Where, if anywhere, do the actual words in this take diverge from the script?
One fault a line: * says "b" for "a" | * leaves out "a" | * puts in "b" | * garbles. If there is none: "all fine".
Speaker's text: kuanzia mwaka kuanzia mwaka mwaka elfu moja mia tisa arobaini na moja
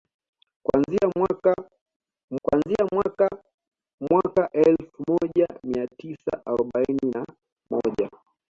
all fine